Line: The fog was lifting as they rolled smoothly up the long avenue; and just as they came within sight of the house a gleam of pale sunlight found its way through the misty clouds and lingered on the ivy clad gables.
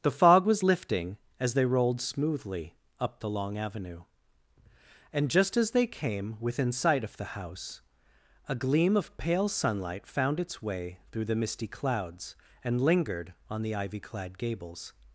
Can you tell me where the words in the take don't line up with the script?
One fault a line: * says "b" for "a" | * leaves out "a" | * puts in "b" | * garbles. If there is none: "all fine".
all fine